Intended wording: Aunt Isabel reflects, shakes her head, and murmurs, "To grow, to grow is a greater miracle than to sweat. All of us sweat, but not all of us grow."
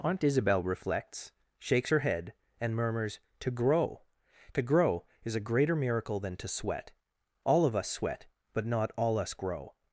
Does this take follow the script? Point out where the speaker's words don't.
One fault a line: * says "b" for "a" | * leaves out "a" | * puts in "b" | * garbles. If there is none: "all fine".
* leaves out "of"